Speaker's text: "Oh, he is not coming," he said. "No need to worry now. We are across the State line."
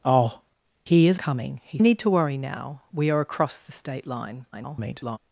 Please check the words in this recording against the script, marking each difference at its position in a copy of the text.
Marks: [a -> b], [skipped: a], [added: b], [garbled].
"Oh, he is [skipped: not] coming," he [skipped: said. "No] need to worry now. We are across the State line." [garbled]